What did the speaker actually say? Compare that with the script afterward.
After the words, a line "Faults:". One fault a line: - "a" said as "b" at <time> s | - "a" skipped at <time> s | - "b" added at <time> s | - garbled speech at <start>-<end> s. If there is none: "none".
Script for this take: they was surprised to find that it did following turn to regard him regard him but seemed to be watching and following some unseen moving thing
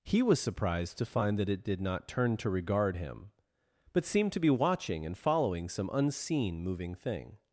he was surprised to find that it did not turn to regard him but seemed to be watching and following some unseen moving thing
Faults:
- "they" said as "he" at 0.0 s
- "following" said as "not" at 1.8 s
- "regard him" skipped at 3.3 s